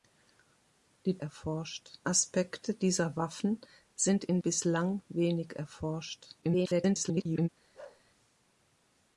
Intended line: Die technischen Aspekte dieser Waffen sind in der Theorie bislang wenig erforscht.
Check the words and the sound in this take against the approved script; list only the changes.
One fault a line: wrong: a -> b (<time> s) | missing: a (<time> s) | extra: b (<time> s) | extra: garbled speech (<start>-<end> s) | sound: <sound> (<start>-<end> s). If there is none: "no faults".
wrong: technischen -> erforscht (1.2 s)
missing: der Theorie (4.4 s)
extra: garbled speech (6.4-7.5 s)
sound: bark (7.7-8.0 s)